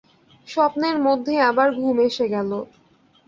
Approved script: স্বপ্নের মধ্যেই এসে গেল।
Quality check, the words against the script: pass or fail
fail